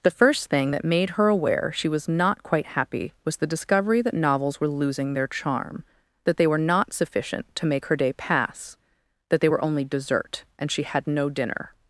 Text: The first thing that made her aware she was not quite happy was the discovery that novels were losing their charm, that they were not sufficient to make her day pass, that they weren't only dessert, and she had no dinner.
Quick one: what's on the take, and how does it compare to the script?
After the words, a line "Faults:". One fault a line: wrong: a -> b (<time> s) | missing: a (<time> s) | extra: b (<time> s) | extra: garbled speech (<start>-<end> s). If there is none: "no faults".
The first thing that made her aware she was not quite happy was the discovery that novels were losing their charm, that they were not sufficient to make her day pass, that they were only dessert, and she had no dinner.
Faults:
wrong: weren't -> were (9.5 s)